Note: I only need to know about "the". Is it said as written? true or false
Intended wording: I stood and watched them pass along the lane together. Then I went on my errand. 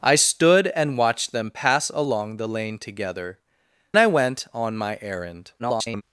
true